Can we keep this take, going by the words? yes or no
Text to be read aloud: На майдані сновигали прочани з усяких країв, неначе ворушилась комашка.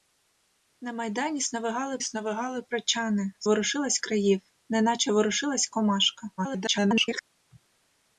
no